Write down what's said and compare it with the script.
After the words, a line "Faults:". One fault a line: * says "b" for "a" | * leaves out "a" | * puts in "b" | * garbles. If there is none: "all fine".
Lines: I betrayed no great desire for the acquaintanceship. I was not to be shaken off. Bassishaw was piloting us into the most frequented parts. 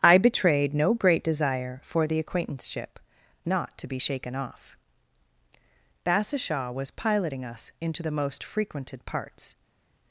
I betrayed no great desire for the acquaintanceship. not to be shaken off. Bassishaw was piloting us into the most frequented parts.
Faults:
* leaves out "I was"